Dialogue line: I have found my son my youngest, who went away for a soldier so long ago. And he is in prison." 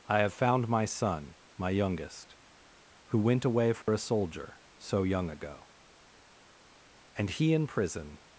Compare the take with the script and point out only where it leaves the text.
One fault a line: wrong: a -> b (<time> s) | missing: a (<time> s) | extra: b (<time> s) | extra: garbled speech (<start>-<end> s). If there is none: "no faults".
wrong: long -> young (5.0 s)
missing: is (7.5 s)